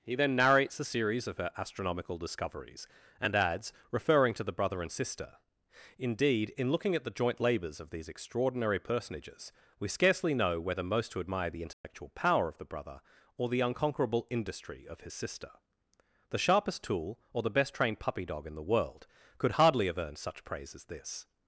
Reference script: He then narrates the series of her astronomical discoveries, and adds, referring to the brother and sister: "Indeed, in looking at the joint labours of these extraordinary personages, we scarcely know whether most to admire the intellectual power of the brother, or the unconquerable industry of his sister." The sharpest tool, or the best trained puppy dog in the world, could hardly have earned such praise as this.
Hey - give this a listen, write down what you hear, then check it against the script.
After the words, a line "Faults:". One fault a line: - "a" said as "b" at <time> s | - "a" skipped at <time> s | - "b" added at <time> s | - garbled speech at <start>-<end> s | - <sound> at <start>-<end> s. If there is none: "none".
He then narrates a series of her astronomical discoveries, and adds, referring to the brother and sister: "Indeed, in looking at the joint labours of these extraordinary personages, we scarcely know whether most to admire the intellectual power of the brother, or the unconquerable industry of his sister." The sharpest tool, or the best trained puppy dog in the world, could hardly have earned such praise as this.
Faults:
- "the" said as "a" at 0.8 s
- dropout at 11.7-11.8 s